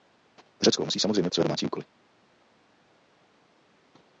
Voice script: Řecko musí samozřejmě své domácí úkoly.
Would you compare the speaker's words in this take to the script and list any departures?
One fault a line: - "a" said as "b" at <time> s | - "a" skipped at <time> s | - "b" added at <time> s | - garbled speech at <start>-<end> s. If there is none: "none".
none